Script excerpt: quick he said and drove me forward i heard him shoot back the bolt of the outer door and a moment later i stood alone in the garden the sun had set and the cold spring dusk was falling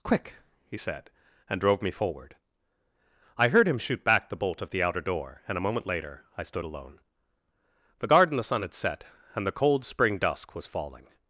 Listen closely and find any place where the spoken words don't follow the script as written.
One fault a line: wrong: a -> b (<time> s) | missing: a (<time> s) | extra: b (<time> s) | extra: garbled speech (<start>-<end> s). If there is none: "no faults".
missing: in (7.0 s)